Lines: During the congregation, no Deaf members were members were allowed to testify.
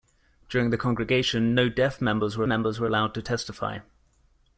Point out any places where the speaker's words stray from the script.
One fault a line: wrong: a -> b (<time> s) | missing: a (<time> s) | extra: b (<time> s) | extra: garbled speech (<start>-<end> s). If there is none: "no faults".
no faults